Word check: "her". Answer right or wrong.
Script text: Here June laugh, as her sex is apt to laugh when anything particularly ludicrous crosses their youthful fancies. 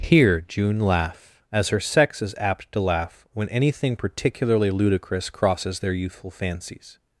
right